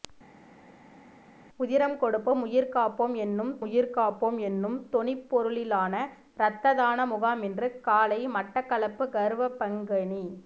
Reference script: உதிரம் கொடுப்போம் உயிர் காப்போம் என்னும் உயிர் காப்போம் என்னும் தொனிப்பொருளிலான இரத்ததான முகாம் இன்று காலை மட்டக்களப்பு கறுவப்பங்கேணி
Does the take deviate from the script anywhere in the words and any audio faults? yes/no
no